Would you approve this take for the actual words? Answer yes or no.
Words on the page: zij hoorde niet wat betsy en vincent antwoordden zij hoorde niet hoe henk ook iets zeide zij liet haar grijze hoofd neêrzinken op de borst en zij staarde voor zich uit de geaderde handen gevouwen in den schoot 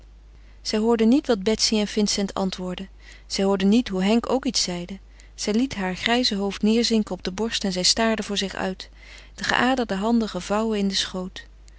yes